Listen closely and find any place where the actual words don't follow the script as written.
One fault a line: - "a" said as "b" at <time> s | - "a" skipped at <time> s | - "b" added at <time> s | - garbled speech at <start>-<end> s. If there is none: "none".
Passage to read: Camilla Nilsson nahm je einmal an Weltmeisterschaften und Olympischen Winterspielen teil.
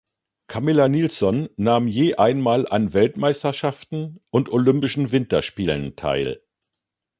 none